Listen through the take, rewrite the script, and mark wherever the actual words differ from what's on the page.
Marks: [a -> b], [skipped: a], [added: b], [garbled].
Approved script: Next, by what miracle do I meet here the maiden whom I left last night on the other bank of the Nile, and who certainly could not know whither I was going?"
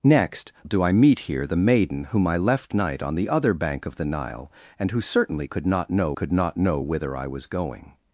Next, [skipped: by what miracle] do I meet here the maiden whom I left [skipped: last] night on the other bank of the Nile, and who certainly could not know [added: could not know] whither I was going?"